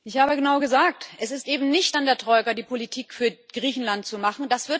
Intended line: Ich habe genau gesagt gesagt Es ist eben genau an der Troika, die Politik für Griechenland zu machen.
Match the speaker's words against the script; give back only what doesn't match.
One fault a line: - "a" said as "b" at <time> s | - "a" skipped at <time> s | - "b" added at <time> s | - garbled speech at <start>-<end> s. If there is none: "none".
- "gesagt" skipped at 1.1 s
- "genau" said as "nicht" at 1.7 s